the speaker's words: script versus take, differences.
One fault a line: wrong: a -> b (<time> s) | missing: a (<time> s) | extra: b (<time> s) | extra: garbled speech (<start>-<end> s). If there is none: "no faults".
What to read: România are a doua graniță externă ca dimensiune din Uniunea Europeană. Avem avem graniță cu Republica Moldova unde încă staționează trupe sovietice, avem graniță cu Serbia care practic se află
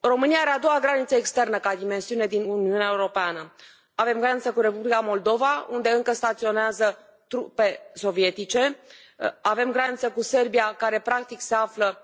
missing: avem (4.2 s)